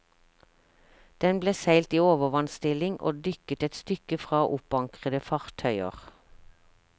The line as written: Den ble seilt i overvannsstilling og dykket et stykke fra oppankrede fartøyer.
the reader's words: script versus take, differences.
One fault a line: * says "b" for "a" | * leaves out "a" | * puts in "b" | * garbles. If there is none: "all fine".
all fine